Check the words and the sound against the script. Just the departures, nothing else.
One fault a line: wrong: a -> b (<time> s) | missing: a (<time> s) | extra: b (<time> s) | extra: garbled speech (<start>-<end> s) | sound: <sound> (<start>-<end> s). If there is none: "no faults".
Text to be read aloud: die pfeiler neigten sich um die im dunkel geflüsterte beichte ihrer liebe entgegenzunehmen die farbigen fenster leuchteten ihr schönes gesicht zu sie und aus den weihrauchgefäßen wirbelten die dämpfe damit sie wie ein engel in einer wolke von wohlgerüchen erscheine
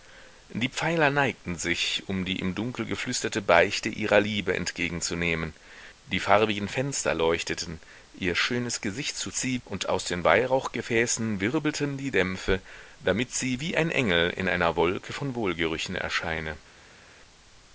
no faults